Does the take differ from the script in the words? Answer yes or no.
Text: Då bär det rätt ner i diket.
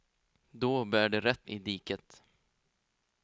yes